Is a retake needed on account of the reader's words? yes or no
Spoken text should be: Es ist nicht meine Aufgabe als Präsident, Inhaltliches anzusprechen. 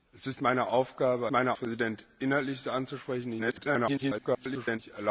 yes